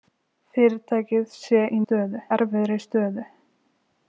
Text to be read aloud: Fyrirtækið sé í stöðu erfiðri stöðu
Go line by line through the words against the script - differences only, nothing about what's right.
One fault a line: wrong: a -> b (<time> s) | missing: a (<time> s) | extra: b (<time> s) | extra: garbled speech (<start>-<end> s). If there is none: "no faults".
no faults